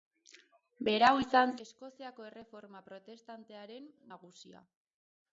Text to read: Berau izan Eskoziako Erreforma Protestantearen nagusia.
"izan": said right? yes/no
yes